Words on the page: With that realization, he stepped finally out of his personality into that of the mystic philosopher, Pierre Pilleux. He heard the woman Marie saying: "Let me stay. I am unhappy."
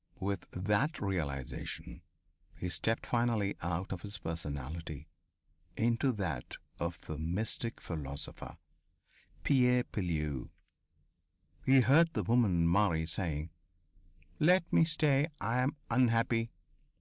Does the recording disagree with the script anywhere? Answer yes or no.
no